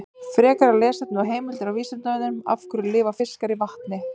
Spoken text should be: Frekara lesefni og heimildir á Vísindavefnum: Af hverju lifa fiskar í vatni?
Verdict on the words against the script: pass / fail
pass